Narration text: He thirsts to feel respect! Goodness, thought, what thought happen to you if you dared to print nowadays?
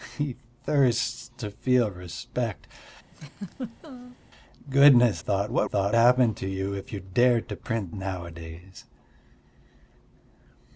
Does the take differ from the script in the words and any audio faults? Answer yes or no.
yes